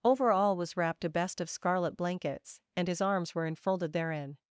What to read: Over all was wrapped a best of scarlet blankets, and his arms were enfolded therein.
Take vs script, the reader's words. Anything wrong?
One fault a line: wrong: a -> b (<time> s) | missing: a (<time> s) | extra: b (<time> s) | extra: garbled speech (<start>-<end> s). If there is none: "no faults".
no faults